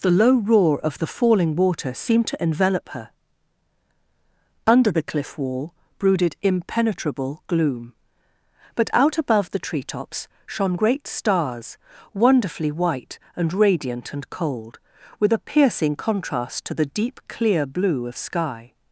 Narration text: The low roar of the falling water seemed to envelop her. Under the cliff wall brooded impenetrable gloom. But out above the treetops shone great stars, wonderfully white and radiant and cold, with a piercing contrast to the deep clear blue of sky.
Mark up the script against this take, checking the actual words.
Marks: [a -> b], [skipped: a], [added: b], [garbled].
The low roar of the falling water seemed to envelop her. Under the cliff wall brooded impenetrable gloom. But out above the treetops shone great stars, wonderfully white and radiant and cold, with a piercing contrast to the deep clear blue of sky.